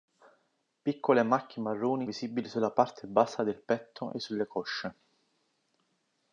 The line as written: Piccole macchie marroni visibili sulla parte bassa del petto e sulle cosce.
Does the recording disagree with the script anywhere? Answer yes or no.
no